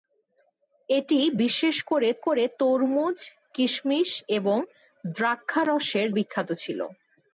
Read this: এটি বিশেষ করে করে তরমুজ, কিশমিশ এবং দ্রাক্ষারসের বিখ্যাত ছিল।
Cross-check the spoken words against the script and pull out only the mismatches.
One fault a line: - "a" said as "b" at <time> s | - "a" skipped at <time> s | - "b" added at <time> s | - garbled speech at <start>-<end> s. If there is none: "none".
none